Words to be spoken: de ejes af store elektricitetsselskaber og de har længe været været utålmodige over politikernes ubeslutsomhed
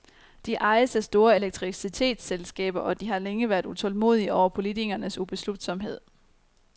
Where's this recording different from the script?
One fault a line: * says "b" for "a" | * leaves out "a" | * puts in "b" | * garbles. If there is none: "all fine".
* leaves out "været"